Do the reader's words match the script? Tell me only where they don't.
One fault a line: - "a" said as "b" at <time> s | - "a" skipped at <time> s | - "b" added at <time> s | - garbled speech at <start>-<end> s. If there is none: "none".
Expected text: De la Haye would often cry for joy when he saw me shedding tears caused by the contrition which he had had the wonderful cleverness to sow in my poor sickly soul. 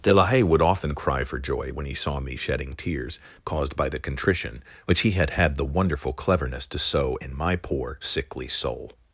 none